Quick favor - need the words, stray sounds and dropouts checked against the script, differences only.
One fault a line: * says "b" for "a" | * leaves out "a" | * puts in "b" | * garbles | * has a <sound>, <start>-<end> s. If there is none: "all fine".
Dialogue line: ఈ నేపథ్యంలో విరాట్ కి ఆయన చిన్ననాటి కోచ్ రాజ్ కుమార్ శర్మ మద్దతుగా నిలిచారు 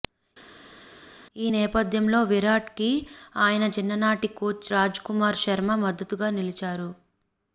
all fine